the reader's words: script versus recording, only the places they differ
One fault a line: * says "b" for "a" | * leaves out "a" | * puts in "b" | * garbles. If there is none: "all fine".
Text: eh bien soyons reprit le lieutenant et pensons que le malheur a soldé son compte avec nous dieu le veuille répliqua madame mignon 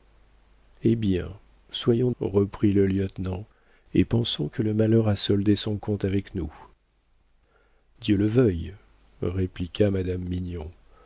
all fine